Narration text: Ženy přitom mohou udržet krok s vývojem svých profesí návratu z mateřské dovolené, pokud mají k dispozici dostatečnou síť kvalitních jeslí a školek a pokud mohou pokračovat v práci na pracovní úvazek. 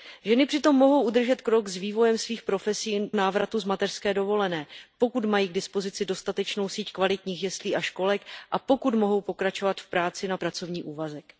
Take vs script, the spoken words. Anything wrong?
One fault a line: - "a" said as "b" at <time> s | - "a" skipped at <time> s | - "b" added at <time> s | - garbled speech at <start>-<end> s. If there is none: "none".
none